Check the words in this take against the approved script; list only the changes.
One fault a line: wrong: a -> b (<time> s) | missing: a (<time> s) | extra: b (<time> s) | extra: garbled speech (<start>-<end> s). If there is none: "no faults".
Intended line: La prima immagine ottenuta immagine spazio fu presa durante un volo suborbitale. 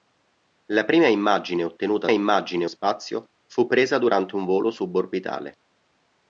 no faults